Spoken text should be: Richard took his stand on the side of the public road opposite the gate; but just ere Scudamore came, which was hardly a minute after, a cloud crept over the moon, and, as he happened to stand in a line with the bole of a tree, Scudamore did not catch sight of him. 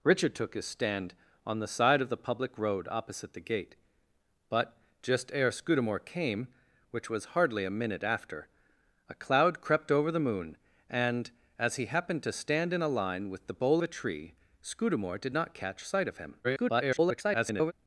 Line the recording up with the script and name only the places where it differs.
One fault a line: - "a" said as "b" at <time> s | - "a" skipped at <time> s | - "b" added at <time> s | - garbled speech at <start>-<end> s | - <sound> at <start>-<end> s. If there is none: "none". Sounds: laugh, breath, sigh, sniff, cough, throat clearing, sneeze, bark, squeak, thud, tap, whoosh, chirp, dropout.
- "of" skipped at 13.8 s
- garbled speech at 16.4-17.7 s